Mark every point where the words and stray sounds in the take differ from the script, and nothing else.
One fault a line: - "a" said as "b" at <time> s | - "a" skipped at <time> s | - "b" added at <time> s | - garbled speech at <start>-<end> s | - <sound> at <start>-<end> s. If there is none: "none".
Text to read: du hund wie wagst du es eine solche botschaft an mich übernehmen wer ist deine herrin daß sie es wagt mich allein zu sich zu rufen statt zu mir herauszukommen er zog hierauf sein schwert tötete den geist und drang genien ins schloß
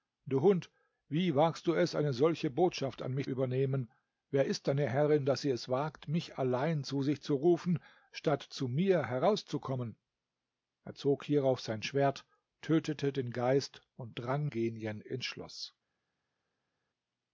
none